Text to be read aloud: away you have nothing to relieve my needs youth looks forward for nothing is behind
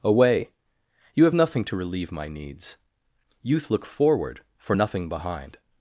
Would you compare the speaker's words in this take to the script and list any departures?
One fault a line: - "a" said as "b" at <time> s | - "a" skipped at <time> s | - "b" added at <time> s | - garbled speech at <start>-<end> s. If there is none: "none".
- "looks" said as "look" at 3.7 s
- "is" skipped at 5.1 s